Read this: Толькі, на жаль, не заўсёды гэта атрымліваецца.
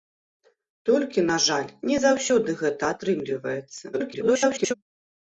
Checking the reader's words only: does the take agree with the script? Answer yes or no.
no